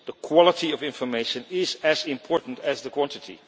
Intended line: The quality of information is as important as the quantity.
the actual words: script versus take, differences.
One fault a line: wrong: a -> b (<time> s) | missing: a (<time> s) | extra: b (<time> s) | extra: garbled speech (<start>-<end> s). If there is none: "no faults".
no faults